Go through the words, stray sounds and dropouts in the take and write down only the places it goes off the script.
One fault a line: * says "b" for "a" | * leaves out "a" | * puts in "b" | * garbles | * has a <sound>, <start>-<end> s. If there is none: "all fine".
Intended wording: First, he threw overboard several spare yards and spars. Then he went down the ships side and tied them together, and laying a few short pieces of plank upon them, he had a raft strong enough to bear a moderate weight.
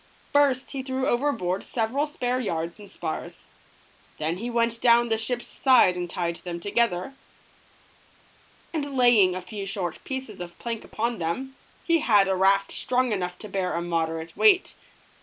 all fine